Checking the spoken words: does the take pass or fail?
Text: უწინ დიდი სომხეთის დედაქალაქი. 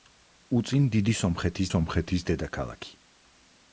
fail